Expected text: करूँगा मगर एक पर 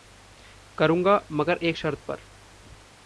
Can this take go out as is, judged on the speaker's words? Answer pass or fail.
fail